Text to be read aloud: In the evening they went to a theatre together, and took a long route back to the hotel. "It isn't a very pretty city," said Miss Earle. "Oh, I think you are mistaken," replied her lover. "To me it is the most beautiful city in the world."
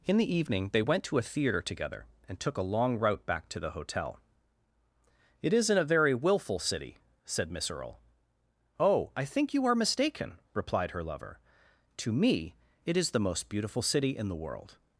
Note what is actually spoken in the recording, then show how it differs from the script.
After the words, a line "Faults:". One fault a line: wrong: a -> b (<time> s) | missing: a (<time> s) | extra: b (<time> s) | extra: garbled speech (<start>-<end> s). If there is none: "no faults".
In the evening they went to a theatre together, and took a long route back to the hotel. "It isn't a very willful city," said Miss Earle. "Oh, I think you are mistaken," replied her lover. "To me it is the most beautiful city in the world."
Faults:
wrong: pretty -> willful (6.1 s)